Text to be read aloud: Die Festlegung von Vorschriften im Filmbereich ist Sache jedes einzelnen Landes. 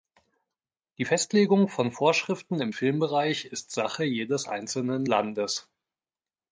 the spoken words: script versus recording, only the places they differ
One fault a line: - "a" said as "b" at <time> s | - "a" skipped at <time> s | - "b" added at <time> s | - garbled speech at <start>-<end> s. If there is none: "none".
none